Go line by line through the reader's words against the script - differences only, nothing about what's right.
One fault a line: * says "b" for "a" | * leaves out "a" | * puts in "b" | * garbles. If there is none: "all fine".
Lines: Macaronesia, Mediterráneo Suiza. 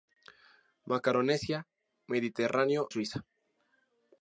all fine